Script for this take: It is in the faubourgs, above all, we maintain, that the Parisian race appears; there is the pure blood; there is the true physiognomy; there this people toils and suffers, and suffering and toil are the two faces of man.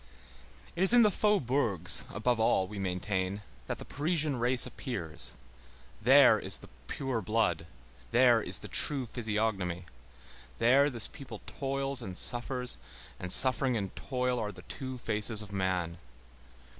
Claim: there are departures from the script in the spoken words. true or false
false